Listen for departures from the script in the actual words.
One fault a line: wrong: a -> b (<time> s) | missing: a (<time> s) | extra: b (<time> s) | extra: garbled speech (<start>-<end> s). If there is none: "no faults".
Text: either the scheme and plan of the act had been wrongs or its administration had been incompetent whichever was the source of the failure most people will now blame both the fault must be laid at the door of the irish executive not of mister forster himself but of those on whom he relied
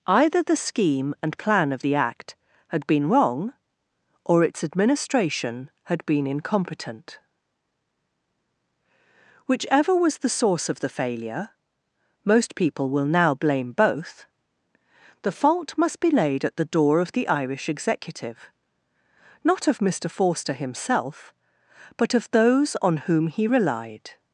wrong: wrongs -> wrong (3.1 s)